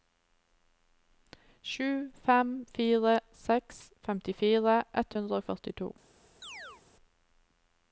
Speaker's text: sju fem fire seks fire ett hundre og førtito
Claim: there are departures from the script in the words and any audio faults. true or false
true